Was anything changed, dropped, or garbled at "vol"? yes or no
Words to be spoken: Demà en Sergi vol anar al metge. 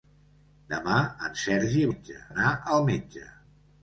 yes